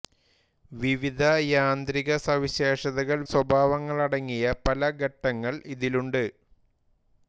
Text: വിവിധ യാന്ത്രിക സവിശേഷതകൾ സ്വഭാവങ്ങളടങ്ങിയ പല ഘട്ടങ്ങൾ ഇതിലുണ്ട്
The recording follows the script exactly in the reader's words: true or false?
true